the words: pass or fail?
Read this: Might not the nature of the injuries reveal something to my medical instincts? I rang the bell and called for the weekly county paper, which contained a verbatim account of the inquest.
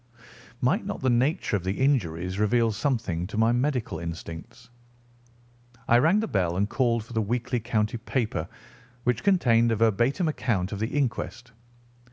pass